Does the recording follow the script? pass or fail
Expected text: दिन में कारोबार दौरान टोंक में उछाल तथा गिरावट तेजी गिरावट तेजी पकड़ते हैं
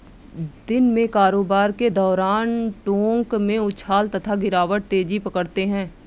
fail